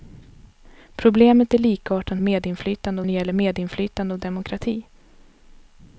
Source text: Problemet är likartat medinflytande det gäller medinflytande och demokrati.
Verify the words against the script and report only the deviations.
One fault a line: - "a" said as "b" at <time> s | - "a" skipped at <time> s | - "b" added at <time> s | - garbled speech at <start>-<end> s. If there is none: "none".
none